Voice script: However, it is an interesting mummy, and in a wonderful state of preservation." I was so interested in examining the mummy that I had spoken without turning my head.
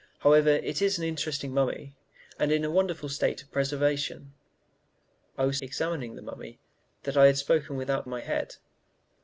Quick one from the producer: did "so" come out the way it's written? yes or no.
no